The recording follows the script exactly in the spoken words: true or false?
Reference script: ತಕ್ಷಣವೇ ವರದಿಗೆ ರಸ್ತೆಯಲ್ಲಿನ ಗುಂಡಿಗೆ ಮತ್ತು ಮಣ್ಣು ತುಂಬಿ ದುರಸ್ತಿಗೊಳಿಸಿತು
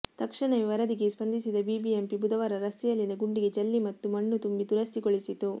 false